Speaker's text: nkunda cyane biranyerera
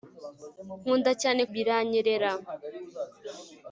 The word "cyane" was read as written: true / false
true